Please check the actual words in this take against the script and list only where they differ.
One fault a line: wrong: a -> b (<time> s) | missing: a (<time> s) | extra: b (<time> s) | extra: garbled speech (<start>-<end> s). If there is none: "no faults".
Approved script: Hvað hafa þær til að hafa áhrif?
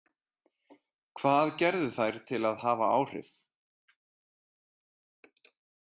wrong: hafa -> gerðu (1.6 s)